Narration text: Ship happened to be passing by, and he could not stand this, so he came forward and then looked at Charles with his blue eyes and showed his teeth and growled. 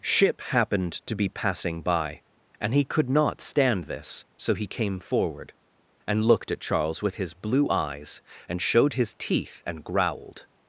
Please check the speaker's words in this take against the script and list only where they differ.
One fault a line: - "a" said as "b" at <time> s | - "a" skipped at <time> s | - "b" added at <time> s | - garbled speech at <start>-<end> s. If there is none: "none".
- "then" skipped at 6.2 s